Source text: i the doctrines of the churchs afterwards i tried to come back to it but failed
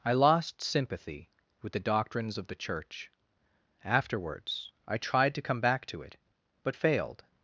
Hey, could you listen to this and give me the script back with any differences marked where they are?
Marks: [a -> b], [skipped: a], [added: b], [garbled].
i [added: lost sympathy with] the doctrines of the [churchs -> church] afterwards i tried to come back to it but failed